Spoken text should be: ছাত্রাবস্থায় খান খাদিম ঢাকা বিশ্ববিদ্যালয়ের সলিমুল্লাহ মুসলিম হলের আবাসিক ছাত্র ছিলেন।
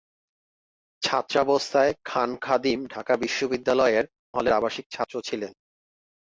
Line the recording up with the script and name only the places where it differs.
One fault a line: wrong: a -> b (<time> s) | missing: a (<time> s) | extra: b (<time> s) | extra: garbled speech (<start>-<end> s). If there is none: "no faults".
missing: সলিমুল্লাহ মুসলিম (4.0 s)